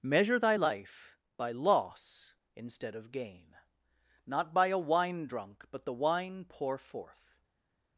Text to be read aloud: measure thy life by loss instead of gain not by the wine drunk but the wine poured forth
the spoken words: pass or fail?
fail